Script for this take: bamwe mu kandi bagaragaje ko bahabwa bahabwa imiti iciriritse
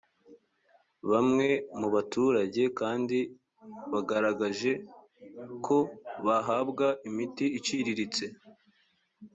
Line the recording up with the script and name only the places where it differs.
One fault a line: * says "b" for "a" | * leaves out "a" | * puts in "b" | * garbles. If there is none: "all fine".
* puts in "baturage"
* leaves out "bahabwa"